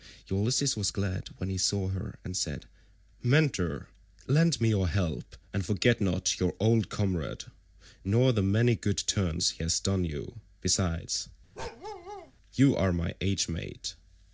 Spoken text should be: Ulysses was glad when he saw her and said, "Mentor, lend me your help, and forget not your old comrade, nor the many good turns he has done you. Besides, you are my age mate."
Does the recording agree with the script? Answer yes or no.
yes